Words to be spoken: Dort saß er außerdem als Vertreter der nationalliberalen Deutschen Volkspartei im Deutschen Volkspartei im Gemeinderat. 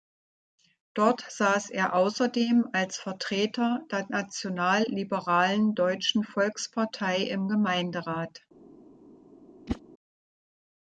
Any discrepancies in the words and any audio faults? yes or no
yes